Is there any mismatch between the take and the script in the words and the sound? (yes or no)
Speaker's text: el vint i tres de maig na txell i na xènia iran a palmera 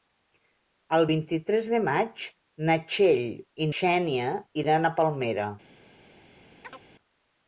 yes